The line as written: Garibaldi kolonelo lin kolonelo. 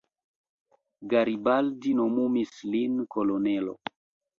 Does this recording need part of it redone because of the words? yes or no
yes